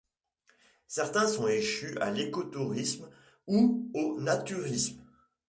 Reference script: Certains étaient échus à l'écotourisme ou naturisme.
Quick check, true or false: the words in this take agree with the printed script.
false